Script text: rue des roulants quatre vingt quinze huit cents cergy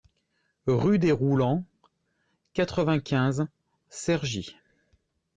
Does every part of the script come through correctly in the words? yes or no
no